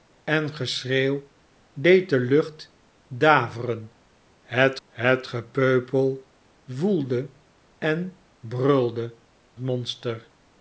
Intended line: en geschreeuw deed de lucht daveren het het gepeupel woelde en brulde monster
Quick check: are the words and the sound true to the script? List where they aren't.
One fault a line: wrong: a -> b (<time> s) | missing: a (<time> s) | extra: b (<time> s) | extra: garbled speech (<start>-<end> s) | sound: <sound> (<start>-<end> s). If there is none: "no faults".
no faults